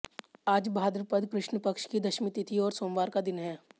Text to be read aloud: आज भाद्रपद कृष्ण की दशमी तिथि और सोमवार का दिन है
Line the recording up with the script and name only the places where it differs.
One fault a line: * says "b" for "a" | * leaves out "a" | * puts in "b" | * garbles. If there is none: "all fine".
* puts in "पक्ष"